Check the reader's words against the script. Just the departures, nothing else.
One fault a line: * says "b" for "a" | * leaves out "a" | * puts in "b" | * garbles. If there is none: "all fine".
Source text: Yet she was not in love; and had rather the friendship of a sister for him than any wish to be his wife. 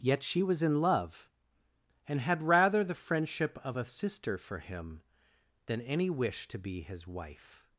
* leaves out "not"